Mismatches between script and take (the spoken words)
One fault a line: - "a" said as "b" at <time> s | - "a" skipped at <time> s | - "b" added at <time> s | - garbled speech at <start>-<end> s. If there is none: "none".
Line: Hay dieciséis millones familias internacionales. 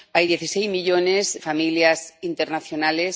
none